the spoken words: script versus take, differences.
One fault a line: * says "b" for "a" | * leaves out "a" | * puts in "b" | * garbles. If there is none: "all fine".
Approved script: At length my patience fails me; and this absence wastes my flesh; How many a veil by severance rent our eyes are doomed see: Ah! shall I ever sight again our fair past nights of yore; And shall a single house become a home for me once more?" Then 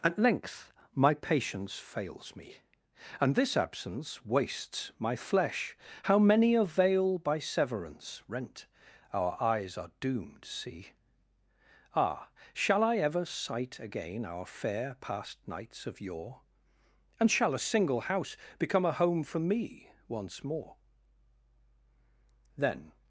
all fine